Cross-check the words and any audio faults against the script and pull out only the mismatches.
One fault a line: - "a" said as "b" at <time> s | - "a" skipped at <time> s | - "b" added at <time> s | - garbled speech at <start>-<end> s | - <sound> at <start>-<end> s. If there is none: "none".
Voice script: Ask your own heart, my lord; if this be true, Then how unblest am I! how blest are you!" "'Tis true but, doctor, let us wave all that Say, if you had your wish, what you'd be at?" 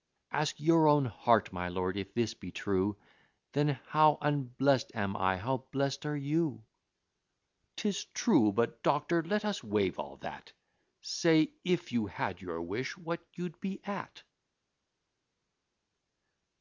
none